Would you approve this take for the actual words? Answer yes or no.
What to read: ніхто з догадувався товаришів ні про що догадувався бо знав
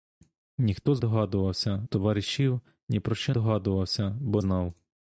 yes